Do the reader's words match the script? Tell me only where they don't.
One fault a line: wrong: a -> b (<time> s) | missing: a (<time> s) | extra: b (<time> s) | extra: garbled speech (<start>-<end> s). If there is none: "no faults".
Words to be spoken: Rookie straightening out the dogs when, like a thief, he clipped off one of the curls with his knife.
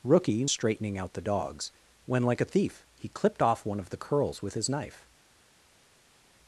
no faults